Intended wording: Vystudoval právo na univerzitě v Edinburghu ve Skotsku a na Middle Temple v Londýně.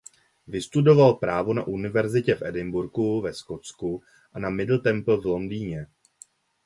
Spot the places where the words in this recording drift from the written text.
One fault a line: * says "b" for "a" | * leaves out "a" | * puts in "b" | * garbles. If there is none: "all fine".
all fine